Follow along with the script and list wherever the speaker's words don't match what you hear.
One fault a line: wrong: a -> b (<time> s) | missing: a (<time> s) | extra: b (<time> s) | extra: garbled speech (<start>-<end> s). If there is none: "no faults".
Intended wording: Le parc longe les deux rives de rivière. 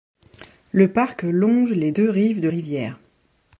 no faults